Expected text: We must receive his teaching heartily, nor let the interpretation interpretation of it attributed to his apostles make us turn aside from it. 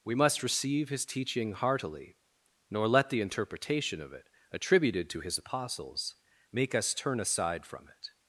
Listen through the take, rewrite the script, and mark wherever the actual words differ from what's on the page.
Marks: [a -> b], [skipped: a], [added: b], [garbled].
We must receive his teaching heartily, nor let the interpretation [skipped: interpretation] of it attributed to his apostles make us turn aside from it.